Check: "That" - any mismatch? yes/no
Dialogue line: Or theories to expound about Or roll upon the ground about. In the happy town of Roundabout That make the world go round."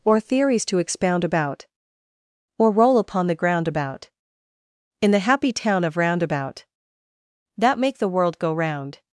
no